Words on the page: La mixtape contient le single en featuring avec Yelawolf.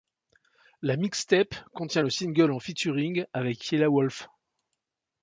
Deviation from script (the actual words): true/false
false